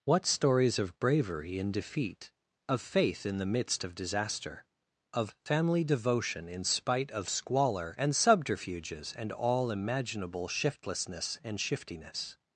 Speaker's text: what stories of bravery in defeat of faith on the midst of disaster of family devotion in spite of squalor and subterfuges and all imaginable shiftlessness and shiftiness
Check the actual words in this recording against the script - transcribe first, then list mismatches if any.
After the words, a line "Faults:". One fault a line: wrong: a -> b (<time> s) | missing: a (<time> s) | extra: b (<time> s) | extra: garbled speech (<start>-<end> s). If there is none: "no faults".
what stories of bravery in defeat of faith in the midst of disaster of family devotion in spite of squalor and subterfuges and all imaginable shiftlessness and shiftiness
Faults:
wrong: on -> in (3.2 s)